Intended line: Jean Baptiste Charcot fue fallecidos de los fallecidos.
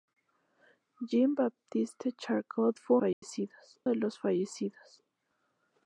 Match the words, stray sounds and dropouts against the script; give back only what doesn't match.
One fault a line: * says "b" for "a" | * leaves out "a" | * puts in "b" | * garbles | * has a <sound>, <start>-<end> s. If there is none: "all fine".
* has a dropout, 3.1-3.2 s